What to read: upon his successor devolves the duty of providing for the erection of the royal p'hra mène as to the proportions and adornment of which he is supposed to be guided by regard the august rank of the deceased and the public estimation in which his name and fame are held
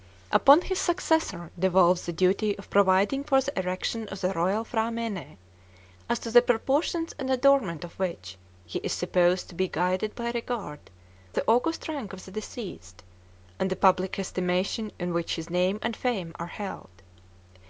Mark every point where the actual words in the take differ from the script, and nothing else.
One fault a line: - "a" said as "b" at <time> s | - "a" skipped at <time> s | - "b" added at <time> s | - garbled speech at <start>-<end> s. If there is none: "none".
none